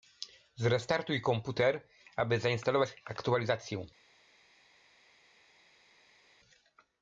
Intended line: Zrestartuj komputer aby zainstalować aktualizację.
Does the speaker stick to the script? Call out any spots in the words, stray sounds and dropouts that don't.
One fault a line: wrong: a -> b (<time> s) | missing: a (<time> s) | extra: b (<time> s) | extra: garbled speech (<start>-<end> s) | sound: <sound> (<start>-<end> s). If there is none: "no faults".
no faults